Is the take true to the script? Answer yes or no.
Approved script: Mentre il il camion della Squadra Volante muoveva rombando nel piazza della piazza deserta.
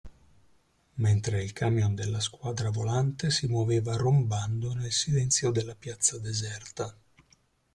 no